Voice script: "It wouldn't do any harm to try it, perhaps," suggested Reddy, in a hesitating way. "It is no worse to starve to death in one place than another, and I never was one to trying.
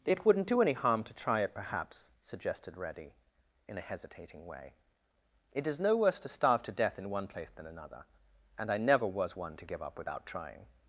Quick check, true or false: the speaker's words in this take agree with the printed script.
false